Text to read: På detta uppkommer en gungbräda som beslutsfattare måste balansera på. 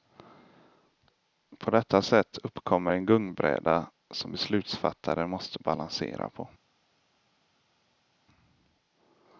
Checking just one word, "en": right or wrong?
right